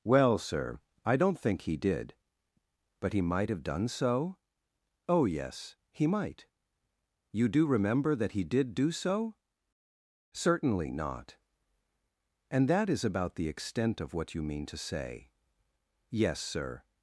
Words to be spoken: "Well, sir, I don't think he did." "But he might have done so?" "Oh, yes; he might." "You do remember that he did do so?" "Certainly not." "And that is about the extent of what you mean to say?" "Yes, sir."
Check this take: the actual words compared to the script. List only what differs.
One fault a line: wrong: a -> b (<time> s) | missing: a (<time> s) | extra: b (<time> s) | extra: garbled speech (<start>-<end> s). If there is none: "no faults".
no faults